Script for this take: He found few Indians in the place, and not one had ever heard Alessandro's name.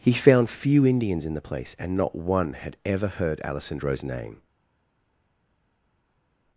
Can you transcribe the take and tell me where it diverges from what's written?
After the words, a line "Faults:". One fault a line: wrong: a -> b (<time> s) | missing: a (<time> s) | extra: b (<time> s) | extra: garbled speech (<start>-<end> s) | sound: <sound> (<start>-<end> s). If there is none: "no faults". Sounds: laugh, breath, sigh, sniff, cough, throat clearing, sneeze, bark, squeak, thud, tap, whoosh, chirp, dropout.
He found few Indians in the place, and not one had ever heard Alessandro's name.
Faults:
no faults